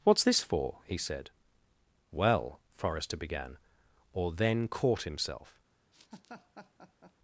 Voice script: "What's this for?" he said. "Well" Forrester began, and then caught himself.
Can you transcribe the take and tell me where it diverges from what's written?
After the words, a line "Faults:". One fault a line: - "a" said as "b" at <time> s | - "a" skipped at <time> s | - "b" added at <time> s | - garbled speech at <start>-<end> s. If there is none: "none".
"What's this for?" he said. "Well" Forrester began, or then caught himself.
Faults:
- "and" said as "or" at 4.1 s